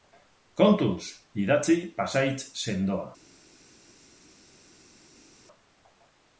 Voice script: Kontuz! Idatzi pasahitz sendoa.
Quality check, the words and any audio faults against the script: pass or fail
pass